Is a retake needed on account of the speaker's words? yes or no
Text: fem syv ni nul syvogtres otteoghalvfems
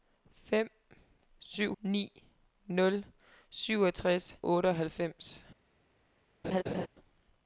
no